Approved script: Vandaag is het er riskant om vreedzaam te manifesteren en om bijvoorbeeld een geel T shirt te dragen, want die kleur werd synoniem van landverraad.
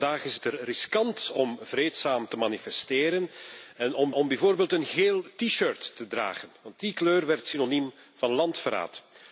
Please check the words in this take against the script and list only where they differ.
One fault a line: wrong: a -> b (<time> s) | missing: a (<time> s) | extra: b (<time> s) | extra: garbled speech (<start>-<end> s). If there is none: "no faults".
extra: om (4.1 s)